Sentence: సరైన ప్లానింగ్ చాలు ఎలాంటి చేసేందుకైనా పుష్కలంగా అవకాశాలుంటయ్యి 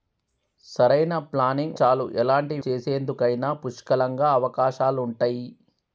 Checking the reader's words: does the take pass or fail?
pass